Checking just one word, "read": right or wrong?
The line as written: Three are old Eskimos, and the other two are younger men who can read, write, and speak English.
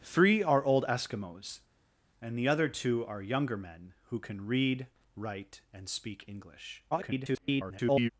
right